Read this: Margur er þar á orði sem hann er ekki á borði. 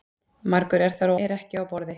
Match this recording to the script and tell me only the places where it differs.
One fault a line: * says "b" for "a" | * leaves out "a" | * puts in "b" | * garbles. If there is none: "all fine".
* leaves out "orði sem hann"